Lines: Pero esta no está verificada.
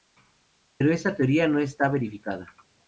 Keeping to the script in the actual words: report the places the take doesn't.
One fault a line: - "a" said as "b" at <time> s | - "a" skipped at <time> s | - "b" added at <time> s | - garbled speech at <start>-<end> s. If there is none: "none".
- "teoría" added at 1.1 s